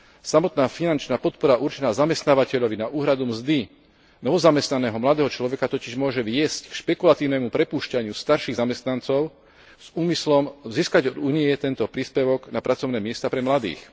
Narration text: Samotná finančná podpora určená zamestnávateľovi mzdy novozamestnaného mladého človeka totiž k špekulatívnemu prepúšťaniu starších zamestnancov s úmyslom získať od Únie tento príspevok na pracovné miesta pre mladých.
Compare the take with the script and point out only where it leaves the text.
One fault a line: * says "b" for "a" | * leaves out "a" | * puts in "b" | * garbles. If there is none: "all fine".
* puts in "na úhradu"
* puts in "môže viesť"